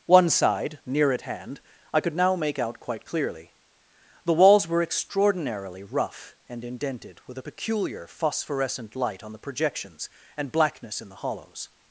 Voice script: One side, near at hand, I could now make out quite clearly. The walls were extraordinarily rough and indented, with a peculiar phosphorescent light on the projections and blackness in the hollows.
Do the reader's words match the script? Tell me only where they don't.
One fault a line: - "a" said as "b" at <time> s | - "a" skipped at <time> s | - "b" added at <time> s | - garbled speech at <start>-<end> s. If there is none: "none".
none